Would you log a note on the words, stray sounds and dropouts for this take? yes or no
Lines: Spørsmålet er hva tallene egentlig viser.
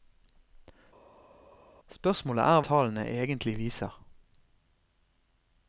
yes